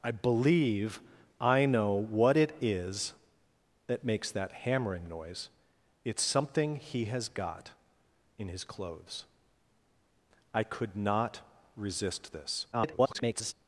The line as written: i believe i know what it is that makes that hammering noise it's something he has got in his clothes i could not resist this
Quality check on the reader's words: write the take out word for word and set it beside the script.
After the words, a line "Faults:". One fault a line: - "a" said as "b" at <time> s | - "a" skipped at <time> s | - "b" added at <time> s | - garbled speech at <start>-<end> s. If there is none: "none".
i believe i know what it is that makes that hammering noise it's something he has got in his clothes i could not resist this [garbled]
Faults:
- garbled speech at 12.7-13.5 s